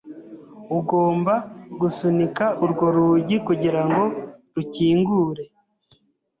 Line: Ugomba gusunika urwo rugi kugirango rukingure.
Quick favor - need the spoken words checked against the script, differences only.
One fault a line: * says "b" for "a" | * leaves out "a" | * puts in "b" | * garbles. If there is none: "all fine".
all fine